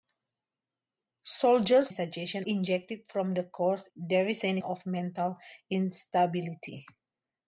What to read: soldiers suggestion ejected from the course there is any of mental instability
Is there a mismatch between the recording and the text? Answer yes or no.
no